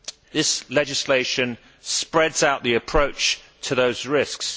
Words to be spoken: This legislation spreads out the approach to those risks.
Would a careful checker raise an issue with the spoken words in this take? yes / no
no